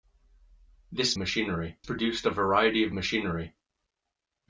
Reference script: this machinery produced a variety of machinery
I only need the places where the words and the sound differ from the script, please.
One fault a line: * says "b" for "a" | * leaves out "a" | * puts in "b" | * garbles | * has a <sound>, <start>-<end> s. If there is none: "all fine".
all fine